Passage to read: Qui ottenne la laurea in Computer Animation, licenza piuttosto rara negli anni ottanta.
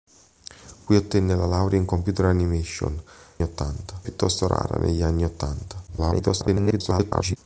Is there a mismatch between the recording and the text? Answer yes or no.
yes